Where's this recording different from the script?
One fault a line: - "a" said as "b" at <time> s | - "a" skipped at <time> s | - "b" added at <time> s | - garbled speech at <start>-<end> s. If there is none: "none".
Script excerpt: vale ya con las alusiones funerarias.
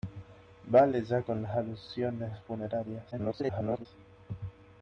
- garbled speech at 3.1-3.9 s